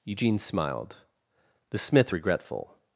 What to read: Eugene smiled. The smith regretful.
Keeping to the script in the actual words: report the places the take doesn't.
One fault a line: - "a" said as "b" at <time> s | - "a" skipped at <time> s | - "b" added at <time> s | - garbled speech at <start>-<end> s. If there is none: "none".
none